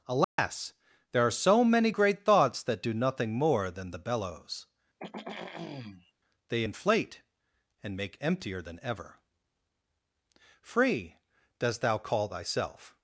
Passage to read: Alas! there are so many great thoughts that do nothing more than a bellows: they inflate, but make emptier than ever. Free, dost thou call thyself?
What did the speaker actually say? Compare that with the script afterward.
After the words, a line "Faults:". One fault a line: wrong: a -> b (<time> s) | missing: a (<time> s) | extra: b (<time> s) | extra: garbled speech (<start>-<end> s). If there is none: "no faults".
Alas! there are so many great thoughts that do nothing more than the bellows: they inflate, and make emptier than ever. Free, dost thou call thyself?
Faults:
wrong: a -> the (3.9 s)
wrong: but -> and (7.8 s)